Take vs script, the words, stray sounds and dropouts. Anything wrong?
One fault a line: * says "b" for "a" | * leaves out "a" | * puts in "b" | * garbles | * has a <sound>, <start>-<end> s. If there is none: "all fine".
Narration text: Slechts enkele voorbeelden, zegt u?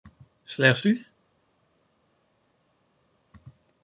* leaves out "enkele voorbeelden zegt"